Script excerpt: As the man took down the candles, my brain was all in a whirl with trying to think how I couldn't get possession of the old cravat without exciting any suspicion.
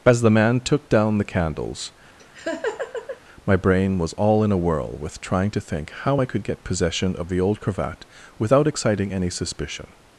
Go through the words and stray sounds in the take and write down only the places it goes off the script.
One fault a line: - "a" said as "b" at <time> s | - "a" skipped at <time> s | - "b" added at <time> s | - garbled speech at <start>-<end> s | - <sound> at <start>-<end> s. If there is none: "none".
- laugh at 2.2-3.2 s
- "couldn't" said as "could" at 6.2 s